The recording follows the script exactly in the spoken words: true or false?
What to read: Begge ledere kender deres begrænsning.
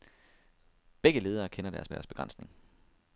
false